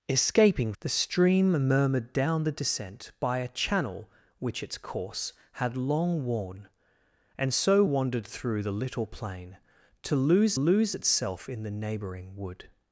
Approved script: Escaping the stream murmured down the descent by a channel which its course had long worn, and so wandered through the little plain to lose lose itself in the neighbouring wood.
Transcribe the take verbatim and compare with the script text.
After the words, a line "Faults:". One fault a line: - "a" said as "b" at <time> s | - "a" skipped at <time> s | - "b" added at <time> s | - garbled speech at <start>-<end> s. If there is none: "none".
Escaping the stream murmured down the descent by a channel which its course had long worn, and so wandered through the little plain to lose lose itself in the neighbouring wood.
Faults:
none